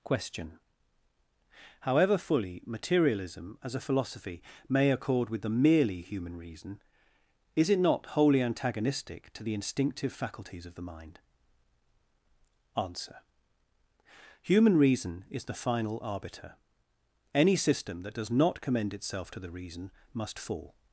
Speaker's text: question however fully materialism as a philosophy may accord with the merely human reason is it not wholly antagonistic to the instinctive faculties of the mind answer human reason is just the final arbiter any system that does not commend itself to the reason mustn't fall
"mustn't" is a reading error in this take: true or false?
true